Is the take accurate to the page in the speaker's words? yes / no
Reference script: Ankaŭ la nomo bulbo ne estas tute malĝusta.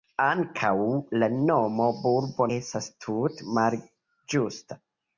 no